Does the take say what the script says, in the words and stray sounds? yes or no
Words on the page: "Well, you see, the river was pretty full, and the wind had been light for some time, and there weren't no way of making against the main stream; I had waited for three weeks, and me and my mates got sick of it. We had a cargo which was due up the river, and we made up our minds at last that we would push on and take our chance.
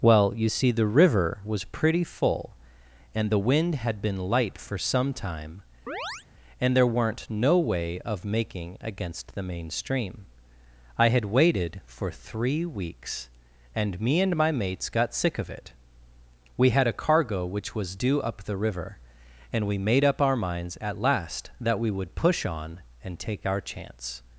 no